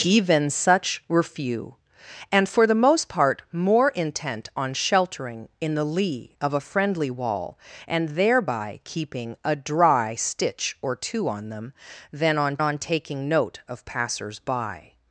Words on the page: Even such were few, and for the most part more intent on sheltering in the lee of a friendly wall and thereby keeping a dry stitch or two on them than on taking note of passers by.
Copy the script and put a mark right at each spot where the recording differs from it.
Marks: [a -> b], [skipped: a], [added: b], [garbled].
Even such were few, and for the most part more intent on sheltering in the lee of a friendly wall and thereby keeping a dry stitch or two on them than on [added: on] taking note of passers by.